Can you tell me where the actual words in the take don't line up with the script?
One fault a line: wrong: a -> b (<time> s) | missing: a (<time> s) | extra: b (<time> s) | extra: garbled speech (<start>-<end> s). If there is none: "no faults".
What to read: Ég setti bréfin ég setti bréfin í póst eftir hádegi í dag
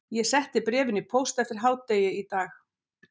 missing: ég setti bréfin (1.0 s)